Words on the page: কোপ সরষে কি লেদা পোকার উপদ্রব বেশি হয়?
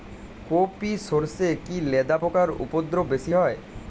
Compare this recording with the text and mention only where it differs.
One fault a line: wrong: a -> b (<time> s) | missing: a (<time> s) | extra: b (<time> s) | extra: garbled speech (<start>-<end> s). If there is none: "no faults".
extra: ই (0.8 s)